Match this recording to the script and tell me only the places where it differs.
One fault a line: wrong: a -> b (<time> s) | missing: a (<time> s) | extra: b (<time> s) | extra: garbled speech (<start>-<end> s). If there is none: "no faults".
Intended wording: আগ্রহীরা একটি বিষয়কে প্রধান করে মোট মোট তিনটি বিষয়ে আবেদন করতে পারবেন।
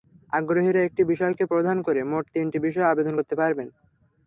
missing: মোট (2.2 s)